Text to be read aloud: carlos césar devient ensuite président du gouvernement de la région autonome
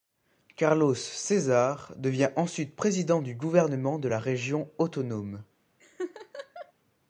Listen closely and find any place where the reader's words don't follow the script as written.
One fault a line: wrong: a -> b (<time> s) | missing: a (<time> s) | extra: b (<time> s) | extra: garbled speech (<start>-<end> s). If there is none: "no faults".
no faults